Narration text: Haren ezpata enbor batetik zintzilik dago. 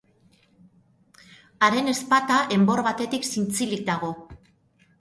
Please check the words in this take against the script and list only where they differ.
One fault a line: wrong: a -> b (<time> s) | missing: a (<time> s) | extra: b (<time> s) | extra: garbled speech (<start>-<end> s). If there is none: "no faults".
no faults